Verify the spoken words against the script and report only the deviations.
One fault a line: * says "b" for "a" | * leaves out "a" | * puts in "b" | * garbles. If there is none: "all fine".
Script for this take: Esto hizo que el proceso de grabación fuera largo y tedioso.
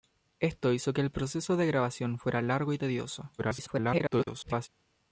* garbles